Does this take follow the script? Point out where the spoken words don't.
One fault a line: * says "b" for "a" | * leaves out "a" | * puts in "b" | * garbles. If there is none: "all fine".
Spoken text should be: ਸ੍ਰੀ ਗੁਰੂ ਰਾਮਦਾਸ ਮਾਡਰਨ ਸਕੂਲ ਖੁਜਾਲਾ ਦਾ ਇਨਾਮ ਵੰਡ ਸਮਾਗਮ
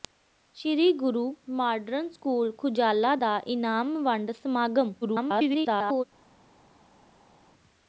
* leaves out "ਰਾਮਦਾਸ"
* garbles